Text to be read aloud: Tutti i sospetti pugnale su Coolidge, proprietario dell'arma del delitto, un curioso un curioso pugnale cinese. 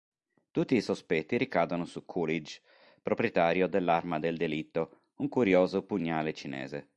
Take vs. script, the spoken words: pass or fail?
fail